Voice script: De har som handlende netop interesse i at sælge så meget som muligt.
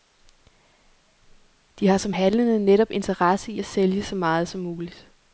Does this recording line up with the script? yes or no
yes